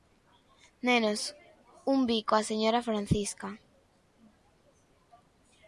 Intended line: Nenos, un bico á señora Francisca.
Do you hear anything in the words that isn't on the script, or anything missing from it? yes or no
no